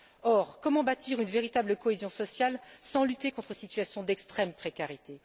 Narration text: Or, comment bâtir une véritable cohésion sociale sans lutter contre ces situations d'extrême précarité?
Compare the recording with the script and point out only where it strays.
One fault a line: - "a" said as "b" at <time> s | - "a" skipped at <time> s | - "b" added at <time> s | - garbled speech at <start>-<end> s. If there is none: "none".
- "ces" skipped at 3.5 s